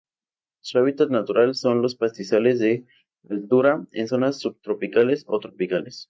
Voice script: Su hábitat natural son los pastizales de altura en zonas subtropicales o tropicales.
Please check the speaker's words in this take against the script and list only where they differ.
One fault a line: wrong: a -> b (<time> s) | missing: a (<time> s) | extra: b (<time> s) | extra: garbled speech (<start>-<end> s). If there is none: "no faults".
no faults